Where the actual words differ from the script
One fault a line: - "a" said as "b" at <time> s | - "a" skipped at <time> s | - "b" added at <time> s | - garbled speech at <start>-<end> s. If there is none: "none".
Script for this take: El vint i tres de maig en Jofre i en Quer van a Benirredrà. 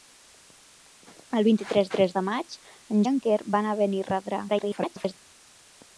- "tres" added at 2.0 s
- "Jofre" skipped at 3.0 s
- garbled speech at 4.5-5.1 s